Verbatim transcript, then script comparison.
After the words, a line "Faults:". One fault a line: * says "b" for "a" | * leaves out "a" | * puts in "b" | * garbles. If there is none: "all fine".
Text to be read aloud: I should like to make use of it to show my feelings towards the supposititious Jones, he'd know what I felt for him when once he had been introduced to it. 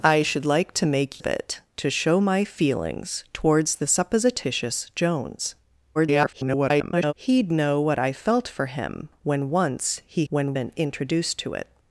I should like to make of it to show my feelings towards the supposititious Jones, [garbled] he'd know what I felt for him when once he when been introduced to it.
Faults:
* leaves out "use"
* garbles
* says "when" for "had"